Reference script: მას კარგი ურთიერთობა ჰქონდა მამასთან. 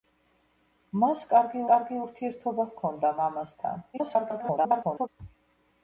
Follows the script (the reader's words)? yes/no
no